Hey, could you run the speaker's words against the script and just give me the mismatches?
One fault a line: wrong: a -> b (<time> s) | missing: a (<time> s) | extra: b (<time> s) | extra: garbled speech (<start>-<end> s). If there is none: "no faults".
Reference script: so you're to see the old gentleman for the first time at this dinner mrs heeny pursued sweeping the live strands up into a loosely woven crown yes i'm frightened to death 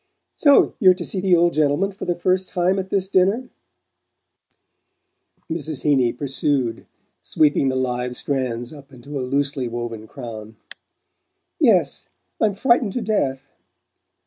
no faults